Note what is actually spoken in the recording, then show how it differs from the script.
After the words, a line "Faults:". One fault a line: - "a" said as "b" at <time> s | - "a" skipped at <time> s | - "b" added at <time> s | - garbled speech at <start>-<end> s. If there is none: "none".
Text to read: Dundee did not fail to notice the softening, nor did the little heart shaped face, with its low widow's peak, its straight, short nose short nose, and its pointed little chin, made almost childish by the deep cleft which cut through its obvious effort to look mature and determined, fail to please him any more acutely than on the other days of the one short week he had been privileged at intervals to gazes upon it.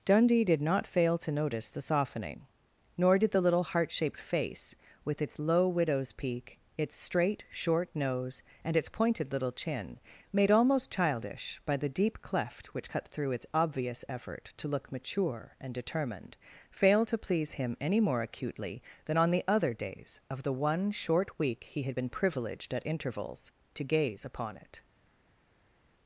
Dundee did not fail to notice the softening, nor did the little heart shaped face, with its low widow's peak, its straight, short nose, and its pointed little chin, made almost childish by the deep cleft which cut through its obvious effort to look mature and determined, fail to please him any more acutely than on the other days of the one short week he had been privileged at intervals to gaze upon it.
Faults:
- "short nose" skipped at 8.4 s
- "gazes" said as "gaze" at 23.8 s